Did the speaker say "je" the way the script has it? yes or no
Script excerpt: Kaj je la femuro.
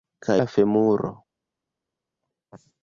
no